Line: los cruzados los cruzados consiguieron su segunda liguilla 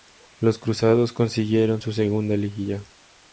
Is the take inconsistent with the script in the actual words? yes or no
yes